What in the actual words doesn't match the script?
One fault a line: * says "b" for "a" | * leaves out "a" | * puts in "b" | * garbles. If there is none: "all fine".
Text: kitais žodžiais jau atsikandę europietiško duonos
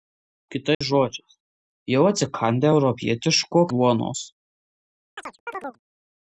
all fine